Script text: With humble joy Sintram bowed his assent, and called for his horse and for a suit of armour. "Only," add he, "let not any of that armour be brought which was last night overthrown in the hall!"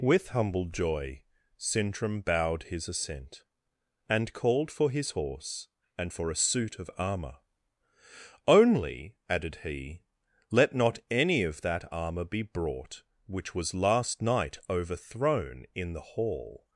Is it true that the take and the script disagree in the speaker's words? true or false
true